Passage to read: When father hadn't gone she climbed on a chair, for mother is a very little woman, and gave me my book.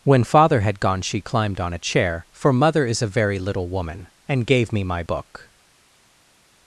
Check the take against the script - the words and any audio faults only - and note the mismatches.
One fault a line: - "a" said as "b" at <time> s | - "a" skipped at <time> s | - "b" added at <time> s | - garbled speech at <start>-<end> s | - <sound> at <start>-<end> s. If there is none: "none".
- "hadn't" said as "had" at 0.6 s